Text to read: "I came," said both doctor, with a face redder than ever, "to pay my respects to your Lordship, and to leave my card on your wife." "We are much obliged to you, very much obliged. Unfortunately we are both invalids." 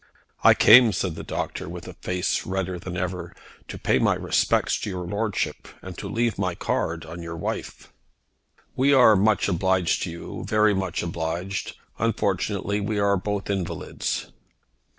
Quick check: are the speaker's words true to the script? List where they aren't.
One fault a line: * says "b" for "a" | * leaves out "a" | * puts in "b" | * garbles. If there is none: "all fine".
* says "the" for "both"